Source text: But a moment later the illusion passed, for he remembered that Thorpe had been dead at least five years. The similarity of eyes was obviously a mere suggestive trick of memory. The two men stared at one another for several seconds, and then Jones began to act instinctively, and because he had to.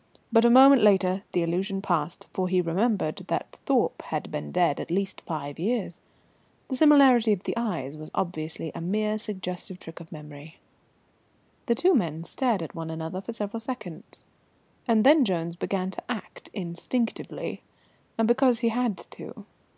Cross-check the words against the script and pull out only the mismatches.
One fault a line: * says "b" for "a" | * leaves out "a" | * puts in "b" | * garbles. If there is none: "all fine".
* puts in "the"